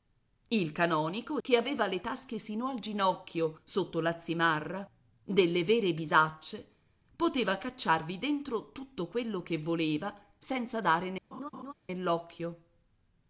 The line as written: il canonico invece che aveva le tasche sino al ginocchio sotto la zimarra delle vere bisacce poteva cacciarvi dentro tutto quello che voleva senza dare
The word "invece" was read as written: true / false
false